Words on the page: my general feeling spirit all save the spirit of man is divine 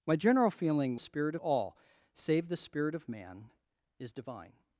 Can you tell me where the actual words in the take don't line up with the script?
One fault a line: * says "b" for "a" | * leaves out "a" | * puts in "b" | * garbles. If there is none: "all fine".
all fine